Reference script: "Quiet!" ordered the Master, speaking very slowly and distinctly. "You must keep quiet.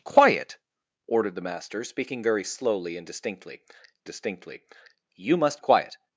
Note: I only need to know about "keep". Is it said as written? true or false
false